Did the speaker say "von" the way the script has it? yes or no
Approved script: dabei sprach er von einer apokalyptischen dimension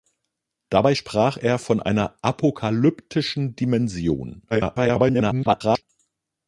yes